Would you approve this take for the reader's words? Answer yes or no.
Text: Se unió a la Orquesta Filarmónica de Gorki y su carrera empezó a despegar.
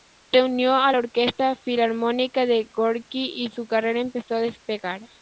yes